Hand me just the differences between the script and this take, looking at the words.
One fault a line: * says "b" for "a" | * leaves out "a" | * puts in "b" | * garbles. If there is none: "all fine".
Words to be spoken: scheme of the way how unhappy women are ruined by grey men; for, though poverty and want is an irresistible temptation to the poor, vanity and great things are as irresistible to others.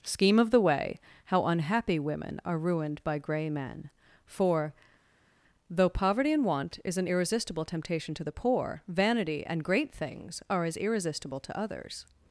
all fine